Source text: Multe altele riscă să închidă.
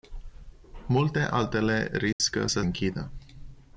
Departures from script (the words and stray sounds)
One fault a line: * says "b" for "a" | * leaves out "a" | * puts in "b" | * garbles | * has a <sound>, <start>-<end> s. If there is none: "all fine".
* has a dropout, 2.1-2.2 s